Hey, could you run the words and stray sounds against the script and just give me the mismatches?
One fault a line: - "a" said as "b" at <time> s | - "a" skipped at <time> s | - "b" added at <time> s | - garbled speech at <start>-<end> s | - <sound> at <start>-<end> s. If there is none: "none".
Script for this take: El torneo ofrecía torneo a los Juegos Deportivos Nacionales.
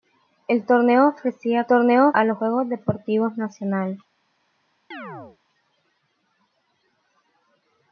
- chirp at 4.9-5.4 s